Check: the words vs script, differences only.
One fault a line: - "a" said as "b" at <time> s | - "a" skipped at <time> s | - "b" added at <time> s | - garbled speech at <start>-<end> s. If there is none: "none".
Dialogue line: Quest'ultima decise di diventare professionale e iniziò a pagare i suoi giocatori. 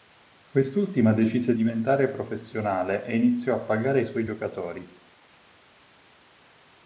- "di" skipped at 1.5 s